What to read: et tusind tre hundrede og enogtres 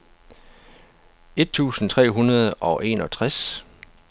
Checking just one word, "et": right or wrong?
right